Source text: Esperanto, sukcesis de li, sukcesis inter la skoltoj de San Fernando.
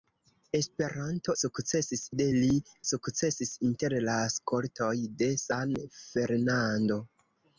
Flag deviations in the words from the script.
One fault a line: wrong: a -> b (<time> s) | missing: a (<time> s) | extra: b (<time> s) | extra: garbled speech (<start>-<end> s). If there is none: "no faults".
no faults